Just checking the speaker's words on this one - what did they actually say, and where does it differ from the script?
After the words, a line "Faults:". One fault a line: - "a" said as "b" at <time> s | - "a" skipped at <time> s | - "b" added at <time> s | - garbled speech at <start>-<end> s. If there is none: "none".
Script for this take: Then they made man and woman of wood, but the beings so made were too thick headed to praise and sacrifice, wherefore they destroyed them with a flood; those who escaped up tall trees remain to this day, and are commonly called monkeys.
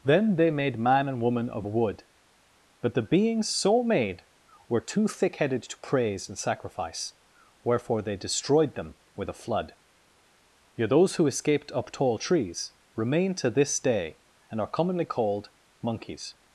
Then they made man and woman of wood, but the beings so made were too thick headed to praise and sacrifice, wherefore they destroyed them with a flood; yet those who escaped up tall trees remain to this day, and are commonly called monkeys.
Faults:
- "yet" added at 10.7 s